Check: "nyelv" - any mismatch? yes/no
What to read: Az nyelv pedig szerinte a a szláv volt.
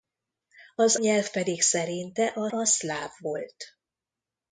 no